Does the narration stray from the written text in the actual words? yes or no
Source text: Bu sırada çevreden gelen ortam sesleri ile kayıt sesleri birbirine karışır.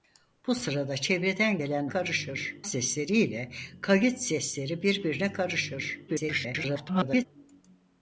yes